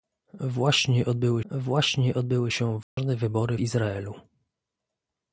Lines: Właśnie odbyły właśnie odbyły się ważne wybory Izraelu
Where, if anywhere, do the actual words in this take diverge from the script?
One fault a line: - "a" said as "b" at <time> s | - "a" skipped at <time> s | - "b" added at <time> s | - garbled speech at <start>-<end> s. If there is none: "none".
none